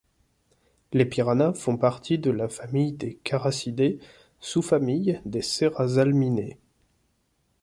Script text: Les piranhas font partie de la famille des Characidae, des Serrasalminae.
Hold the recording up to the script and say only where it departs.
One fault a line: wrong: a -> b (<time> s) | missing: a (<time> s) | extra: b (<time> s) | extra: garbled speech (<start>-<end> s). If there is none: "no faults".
extra: sous famille (4.4 s)